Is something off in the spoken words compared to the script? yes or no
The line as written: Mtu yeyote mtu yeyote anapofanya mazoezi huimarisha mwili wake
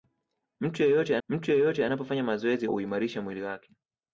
no